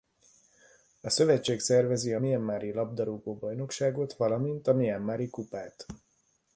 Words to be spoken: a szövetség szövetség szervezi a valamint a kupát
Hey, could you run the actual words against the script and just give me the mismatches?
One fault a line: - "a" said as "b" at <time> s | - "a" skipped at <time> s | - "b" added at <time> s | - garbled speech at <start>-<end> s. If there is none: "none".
- "szövetség" skipped at 1.6 s
- "mianmari labdarúgó bajnokságot" added at 2.2 s
- "mianmari" added at 4.7 s